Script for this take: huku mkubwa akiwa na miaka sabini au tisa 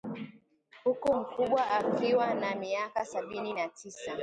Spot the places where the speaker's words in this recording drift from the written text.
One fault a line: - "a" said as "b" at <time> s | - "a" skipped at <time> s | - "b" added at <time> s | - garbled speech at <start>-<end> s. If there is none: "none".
- "au" said as "na" at 3.5 s